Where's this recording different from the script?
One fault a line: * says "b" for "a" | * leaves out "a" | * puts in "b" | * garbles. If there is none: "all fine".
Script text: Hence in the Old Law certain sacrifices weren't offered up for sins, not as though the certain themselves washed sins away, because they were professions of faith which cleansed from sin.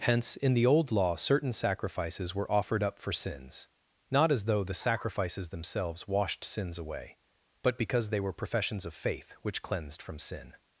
* says "were" for "weren't"
* says "sacrifices" for "certain"
* puts in "but"